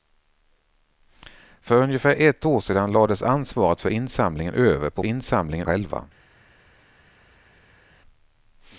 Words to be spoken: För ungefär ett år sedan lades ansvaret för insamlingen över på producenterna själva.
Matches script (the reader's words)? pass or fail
fail